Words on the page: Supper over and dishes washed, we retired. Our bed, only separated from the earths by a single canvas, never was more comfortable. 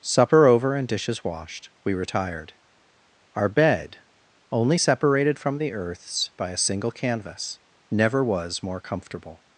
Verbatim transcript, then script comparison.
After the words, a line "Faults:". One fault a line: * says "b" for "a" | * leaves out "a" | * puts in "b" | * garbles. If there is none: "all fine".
Supper over and dishes washed, we retired. Our bed, only separated from the earths by a single canvas, never was more comfortable.
Faults:
all fine